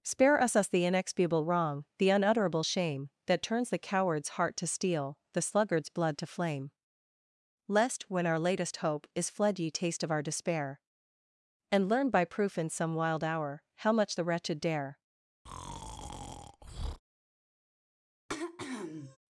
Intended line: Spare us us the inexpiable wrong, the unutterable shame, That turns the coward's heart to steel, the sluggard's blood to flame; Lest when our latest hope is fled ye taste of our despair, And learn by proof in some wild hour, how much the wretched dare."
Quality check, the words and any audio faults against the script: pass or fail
fail